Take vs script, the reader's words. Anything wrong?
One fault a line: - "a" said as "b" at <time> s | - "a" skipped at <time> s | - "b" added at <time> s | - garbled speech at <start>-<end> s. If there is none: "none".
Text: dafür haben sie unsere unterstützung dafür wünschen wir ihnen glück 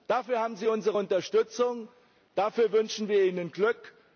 none